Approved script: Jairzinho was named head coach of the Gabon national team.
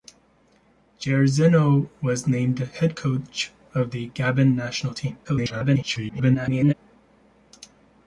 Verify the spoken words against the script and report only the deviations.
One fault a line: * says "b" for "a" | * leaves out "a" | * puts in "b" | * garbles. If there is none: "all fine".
* garbles